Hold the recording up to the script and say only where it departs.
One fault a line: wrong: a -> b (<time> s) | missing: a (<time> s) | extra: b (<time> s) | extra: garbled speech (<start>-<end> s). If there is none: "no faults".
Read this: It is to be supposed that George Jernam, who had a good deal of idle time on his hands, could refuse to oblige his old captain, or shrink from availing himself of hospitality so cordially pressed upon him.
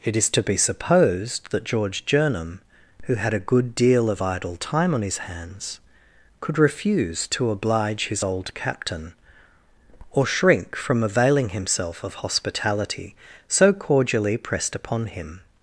no faults